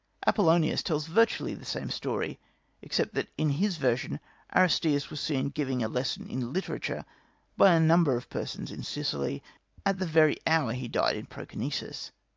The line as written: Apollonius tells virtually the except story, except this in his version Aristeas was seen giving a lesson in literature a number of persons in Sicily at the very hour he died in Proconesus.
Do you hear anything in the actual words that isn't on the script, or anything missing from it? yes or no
yes